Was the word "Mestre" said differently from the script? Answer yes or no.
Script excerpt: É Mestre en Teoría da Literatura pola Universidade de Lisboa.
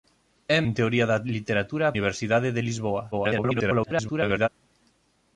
yes